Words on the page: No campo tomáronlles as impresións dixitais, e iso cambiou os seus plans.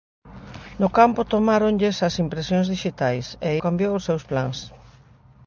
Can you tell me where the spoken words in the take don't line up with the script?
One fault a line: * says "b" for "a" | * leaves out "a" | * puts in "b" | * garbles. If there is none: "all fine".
* leaves out "iso"